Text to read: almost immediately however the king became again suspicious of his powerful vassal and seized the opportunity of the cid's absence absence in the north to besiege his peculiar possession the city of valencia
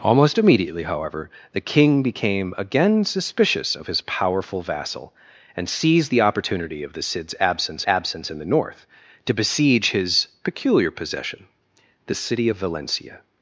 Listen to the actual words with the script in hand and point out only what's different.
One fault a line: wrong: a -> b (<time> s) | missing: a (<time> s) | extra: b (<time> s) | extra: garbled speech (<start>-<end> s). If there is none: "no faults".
no faults